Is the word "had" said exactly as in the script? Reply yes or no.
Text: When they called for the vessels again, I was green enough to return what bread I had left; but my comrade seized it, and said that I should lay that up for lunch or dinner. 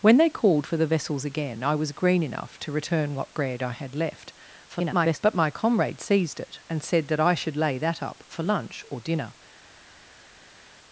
yes